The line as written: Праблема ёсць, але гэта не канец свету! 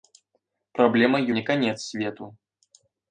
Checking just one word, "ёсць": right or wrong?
wrong